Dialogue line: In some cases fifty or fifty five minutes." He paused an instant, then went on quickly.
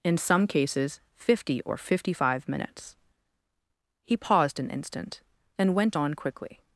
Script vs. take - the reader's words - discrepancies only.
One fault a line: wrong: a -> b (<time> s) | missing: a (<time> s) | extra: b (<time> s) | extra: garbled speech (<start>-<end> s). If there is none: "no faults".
no faults